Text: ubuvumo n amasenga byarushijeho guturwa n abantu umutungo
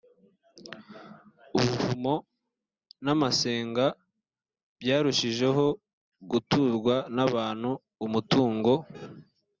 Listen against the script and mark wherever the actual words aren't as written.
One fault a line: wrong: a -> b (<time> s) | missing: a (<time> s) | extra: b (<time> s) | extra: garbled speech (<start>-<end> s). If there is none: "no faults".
no faults